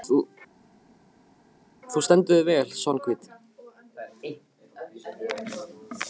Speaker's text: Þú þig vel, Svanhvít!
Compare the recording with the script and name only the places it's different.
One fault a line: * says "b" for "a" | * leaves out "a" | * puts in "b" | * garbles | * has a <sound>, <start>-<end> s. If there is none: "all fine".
* puts in "stendur"